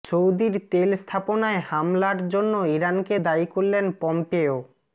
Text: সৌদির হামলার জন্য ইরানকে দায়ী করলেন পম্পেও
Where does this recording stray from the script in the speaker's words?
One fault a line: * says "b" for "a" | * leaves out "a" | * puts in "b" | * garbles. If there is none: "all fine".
* puts in "তেল স্থাপনায়"